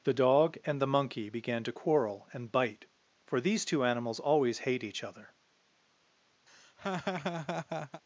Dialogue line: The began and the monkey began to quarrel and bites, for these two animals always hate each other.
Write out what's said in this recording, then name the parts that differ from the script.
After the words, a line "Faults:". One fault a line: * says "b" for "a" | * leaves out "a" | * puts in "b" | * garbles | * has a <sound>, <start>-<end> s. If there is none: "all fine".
The dog and the monkey began to quarrel and bite, for these two animals always hate each other.
Faults:
* says "dog" for "began"
* says "bite" for "bites"
* has a laugh, 6.5-8.0 s